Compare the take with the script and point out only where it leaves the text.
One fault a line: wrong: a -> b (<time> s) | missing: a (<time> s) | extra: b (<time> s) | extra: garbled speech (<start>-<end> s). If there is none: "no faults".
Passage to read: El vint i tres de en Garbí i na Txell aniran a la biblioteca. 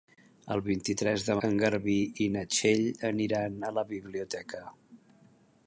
no faults